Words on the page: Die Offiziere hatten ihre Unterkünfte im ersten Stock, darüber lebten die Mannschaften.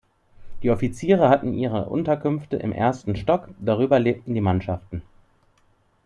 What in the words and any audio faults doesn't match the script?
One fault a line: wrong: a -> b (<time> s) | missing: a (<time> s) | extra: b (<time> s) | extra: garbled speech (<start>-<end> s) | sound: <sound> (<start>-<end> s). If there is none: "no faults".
no faults